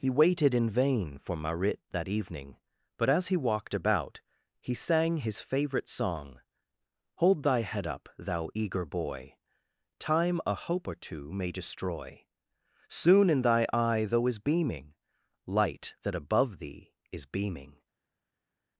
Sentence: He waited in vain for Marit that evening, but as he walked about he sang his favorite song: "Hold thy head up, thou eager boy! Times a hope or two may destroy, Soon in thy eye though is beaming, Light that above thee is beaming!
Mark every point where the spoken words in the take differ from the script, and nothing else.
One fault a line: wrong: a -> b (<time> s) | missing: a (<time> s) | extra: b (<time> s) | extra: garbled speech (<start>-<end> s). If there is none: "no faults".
wrong: Times -> Time (10.0 s)